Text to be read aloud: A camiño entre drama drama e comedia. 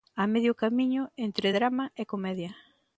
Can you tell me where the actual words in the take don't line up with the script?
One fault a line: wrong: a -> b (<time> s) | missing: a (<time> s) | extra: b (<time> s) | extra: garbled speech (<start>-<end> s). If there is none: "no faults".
extra: medio (0.3 s)
missing: drama (1.9 s)